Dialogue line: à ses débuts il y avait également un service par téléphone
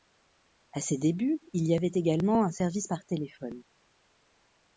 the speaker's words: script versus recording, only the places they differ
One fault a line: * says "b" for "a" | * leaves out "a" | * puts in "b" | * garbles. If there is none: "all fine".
all fine